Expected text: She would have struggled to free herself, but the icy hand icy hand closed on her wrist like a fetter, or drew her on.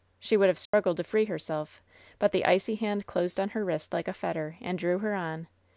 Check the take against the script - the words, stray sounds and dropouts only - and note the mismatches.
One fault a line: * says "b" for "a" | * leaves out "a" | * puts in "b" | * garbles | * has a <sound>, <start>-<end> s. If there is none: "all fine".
* has a dropout, 0.7-0.7 s
* leaves out "icy hand"
* says "and" for "or"